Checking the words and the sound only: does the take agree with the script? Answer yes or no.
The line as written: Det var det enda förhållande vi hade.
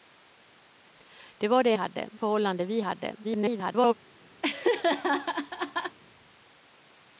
no